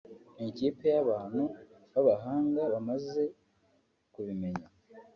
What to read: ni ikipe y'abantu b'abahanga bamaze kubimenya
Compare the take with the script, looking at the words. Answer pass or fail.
pass